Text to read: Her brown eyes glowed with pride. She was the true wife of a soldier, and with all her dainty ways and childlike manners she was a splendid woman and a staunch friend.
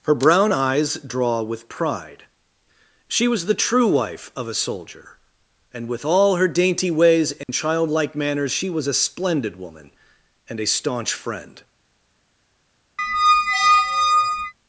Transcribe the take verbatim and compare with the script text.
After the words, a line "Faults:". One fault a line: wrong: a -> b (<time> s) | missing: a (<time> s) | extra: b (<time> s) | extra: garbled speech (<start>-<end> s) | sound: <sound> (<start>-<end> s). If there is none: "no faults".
Her brown eyes draw with pride. She was the true wife of a soldier, and with all her dainty ways and childlike manners she was a splendid woman and a staunch friend.
Faults:
wrong: glowed -> draw (1.1 s)
sound: dropout (7.4-7.5 s)
sound: squeak (13.0-14.5 s)